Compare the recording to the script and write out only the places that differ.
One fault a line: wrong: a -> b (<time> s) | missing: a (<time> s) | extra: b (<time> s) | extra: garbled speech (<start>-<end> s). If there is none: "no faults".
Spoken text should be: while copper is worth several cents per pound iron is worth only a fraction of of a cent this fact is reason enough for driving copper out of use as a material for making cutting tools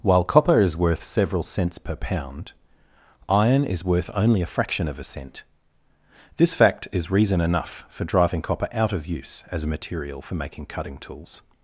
missing: of (5.0 s)